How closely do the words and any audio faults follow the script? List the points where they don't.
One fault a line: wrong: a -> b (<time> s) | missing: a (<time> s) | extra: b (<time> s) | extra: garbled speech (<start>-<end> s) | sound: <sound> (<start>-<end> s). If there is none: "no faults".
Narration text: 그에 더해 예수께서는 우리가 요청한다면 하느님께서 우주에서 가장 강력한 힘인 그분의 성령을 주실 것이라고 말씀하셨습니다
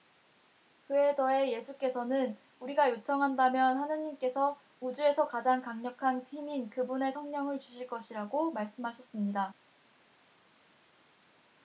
no faults